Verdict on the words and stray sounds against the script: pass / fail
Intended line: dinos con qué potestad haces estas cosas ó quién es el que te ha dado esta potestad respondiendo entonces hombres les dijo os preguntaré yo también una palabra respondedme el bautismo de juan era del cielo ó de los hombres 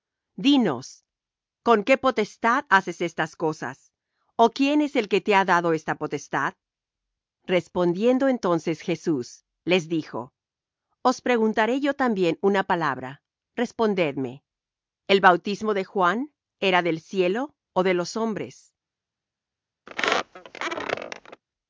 fail